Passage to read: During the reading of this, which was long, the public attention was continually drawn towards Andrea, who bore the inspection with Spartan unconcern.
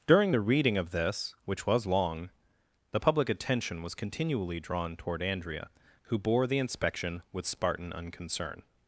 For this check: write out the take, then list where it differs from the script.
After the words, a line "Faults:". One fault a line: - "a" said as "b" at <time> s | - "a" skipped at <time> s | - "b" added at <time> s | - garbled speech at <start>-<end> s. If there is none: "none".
During the reading of this, which was long, the public attention was continually drawn toward Andrea, who bore the inspection with Spartan unconcern.
Faults:
- "towards" said as "toward" at 5.0 s